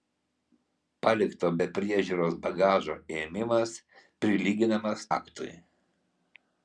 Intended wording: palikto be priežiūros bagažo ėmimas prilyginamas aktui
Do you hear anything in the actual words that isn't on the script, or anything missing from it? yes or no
no